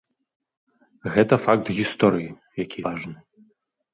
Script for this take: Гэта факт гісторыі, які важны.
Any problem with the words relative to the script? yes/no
no